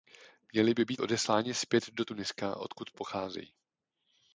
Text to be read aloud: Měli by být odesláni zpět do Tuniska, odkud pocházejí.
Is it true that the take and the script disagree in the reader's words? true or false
false